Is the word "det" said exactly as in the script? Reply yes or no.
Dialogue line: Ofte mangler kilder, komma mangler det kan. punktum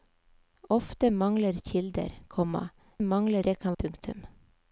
yes